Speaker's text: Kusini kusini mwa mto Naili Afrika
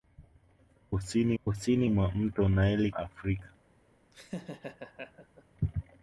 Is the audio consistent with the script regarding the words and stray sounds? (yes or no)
no